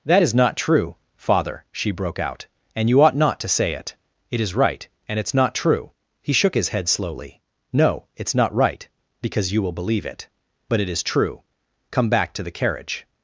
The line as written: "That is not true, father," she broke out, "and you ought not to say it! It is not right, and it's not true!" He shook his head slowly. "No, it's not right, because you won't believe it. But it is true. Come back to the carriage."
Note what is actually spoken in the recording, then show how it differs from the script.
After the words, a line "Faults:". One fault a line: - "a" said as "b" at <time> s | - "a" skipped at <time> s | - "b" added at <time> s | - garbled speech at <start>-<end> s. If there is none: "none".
"That is not true, father," she broke out, "and you ought not to say it! It is right, and it's not true!" He shook his head slowly. "No, it's not right, because you will believe it. But it is true. Come back to the carriage."
Faults:
- "not" skipped at 4.6 s
- "won't" said as "will" at 9.6 s